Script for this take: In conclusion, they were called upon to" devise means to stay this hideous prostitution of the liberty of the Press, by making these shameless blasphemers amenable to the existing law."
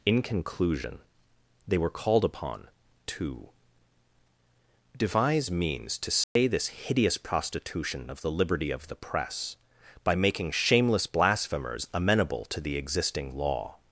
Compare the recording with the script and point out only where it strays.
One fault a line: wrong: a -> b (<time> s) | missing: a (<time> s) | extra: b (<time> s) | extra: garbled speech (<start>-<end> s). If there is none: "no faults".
missing: these (10.5 s)